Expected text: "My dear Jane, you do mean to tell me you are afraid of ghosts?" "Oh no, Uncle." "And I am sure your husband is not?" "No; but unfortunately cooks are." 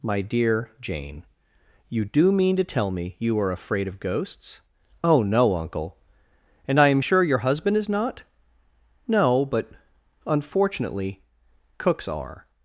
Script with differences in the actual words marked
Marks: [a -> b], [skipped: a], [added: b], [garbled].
"My dear Jane, you do mean to tell me you are afraid of ghosts?" "Oh no, Uncle." "And I am sure your husband is not?" "No; but unfortunately cooks are."